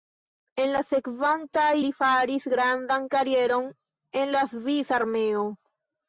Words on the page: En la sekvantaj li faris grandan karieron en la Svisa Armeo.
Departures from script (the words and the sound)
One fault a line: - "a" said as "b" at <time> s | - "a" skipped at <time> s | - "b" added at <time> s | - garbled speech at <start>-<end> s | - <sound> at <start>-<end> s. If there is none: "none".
none